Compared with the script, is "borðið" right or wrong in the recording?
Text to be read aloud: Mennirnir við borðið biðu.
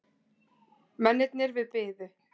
wrong